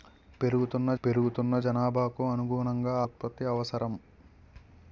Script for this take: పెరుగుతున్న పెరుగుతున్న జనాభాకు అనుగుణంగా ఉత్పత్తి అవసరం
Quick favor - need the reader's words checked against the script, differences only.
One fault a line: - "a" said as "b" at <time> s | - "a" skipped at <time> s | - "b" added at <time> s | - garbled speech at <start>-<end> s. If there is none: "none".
none